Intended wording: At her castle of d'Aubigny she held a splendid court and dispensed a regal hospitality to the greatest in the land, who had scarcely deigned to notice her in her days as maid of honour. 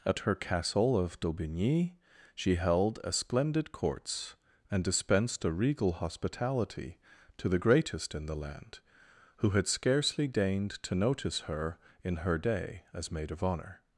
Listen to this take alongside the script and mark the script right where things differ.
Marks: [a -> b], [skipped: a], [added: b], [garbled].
At her castle of d'Aubigny she held a splendid [court -> courts] and dispensed a regal hospitality to the greatest in the land, who had scarcely deigned to notice her in her [days -> day] as maid of honour.